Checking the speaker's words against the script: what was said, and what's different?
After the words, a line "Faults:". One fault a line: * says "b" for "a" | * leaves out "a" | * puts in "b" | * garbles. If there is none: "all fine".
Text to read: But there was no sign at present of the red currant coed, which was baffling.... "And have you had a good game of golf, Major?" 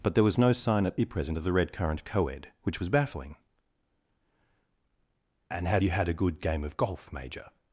But there was no sign at present of the red currant coed, which was baffling.... "And have you had a good game of golf, Major?"
Faults:
all fine